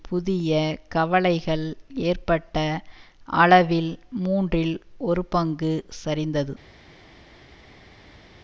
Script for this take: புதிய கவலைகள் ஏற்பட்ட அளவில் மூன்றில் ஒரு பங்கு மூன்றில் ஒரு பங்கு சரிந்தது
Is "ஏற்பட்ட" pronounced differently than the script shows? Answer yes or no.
no